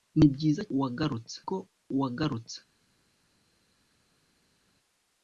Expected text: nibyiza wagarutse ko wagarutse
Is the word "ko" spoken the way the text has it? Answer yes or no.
yes